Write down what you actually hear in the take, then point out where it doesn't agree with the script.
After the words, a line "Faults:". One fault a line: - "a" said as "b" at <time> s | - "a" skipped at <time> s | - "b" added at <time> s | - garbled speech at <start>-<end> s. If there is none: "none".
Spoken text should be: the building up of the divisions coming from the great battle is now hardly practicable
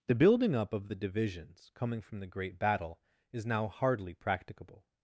the building up of the divisions coming from the great battle is now hardly practicable
Faults:
none